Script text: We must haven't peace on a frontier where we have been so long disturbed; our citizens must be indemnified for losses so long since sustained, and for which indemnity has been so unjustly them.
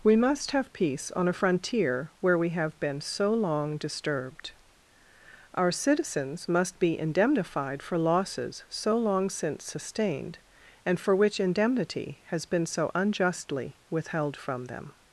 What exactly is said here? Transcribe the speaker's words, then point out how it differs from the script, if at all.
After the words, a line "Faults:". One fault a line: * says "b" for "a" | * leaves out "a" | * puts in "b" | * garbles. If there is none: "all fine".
We must have peace on a frontier where we have been so long disturbed; our citizens must be indemnified for losses so long since sustained, and for which indemnity has been so unjustly withheld from them.
Faults:
* says "have" for "haven't"
* puts in "withheld from"